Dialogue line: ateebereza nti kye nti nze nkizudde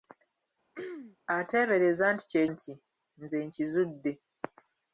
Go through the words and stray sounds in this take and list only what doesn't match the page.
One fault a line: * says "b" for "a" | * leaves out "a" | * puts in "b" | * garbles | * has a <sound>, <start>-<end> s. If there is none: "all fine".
* has a throat clearing, 0.7-1.2 s